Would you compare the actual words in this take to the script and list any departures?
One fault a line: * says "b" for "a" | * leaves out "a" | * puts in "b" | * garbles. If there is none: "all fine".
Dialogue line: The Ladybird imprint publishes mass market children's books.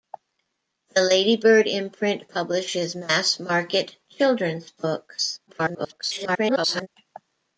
* garbles